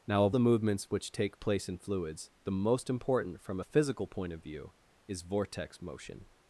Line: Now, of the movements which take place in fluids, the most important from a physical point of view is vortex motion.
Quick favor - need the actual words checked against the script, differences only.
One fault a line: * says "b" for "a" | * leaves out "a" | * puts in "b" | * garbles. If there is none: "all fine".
all fine